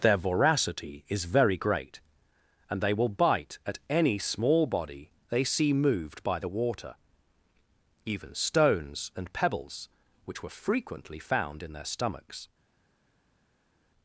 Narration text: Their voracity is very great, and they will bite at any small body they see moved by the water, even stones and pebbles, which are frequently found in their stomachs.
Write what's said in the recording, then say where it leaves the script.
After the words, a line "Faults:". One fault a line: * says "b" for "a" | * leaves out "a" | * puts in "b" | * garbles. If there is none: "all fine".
Their voracity is very great, and they will bite at any small body they see moved by the water, even stones and pebbles, which were frequently found in their stomachs.
Faults:
* says "were" for "are"